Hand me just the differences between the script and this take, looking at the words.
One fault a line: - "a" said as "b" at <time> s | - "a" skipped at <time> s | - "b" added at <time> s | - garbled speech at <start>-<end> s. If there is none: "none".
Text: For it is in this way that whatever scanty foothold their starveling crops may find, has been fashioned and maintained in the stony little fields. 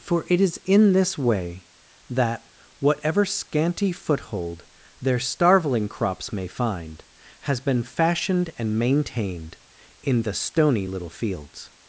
none